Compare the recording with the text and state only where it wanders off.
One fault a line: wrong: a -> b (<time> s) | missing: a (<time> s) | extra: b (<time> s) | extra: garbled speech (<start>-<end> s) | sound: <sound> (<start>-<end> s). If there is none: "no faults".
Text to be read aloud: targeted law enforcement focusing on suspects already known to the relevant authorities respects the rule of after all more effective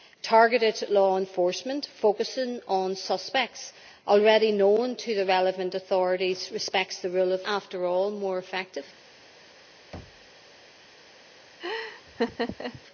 sound: thud (9.9-10.3 s)
sound: laugh (11.6-12.8 s)